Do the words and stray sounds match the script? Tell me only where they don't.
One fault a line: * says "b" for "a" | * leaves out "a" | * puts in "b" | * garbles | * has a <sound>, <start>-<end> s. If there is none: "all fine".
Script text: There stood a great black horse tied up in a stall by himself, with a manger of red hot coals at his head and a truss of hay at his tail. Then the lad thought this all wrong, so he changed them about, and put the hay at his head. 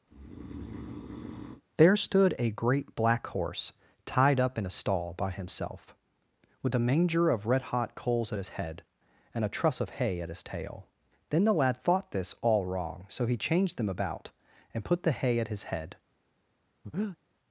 * has a breath, 0.1-1.6 s
* has a breath, 16.8-17.2 s